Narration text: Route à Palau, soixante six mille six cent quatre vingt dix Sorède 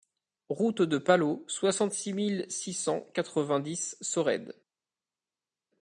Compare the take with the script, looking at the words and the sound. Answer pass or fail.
fail